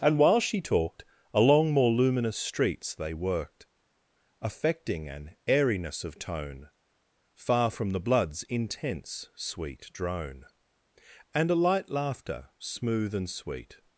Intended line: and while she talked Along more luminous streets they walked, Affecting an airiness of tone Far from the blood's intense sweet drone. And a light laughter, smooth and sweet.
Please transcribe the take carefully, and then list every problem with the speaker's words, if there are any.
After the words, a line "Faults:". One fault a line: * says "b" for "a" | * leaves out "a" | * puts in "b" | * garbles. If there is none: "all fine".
and while she talked Along more luminous streets they worked, Affecting an airiness of tone Far from the blood's intense sweet drone. And a light laughter, smooth and sweet.
Faults:
* says "worked" for "walked"